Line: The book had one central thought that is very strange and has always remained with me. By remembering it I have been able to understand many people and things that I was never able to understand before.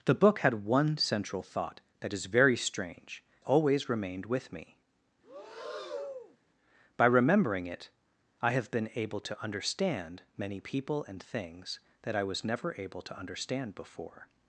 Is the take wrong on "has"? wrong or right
wrong